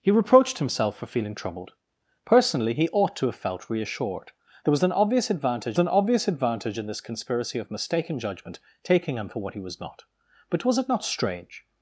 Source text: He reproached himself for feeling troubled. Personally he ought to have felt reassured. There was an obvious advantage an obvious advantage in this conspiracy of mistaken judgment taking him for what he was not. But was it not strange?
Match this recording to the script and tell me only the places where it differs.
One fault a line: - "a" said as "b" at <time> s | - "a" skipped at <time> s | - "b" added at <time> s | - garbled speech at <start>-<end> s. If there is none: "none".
none